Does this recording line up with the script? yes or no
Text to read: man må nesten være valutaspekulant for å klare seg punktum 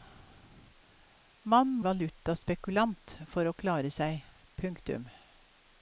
no